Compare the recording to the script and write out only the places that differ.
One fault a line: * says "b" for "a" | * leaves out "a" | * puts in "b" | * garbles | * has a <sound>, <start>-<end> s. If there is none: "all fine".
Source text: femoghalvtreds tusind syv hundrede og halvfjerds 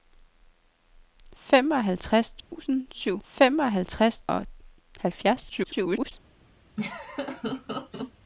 * has a dropout, 2.4-2.5 s
* says "femoghalvtreds" for "hundrede"
* garbles
* has a laugh, 6.8-8.1 s